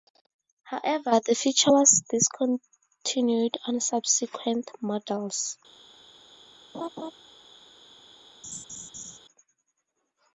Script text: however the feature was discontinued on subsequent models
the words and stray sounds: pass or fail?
fail